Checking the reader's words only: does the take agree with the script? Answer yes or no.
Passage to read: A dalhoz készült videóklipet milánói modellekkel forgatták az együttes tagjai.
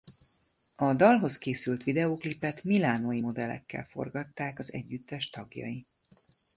yes